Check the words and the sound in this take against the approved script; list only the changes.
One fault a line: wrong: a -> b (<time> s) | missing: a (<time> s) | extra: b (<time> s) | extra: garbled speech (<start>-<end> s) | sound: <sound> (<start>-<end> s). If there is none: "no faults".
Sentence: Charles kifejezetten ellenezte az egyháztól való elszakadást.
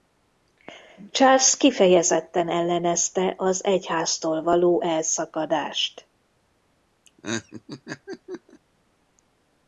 sound: laugh (7.1-8.6 s)